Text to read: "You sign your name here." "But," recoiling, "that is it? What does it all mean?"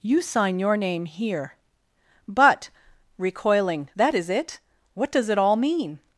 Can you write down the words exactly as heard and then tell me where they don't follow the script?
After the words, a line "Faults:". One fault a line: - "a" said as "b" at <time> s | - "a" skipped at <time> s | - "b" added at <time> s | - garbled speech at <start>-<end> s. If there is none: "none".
"You sign your name here." "But," recoiling, "that is it? What does it all mean?"
Faults:
none